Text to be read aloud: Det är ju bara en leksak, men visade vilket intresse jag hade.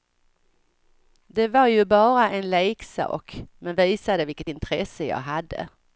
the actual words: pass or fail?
fail